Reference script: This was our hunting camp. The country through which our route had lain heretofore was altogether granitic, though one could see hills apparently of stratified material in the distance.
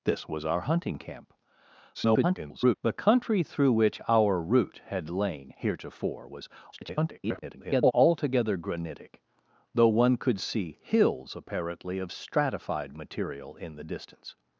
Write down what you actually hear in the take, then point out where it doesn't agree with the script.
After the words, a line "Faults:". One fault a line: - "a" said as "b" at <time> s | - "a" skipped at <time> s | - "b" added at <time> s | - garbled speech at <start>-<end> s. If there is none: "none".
This was our hunting camp. [garbled] The country through which our route had lain heretofore was [garbled] altogether granitic, though one could see hills apparently of stratified material in the distance.
Faults:
- garbled speech at 1.9-2.7 s
- garbled speech at 6.7-7.9 s